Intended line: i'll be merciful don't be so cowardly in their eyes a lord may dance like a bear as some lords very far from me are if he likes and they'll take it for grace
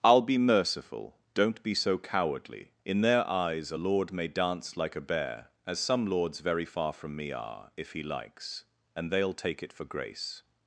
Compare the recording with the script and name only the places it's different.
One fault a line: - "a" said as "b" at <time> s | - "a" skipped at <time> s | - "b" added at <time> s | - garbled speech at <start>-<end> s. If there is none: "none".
none